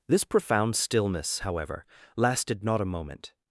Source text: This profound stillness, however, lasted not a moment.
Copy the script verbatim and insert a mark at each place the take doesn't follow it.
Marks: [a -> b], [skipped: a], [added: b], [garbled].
This profound stillness, however, lasted not a moment.